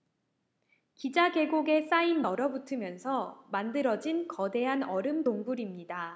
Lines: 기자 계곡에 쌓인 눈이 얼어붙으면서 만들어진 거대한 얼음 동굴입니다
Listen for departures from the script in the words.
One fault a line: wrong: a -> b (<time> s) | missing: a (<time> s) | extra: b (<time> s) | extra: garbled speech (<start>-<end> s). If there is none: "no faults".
missing: 눈이 (2.2 s)